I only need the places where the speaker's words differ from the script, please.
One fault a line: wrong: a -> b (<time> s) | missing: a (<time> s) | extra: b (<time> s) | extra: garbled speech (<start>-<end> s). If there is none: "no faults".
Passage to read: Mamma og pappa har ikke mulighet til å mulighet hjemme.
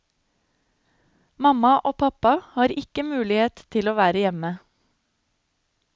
wrong: mulighet -> være (4.0 s)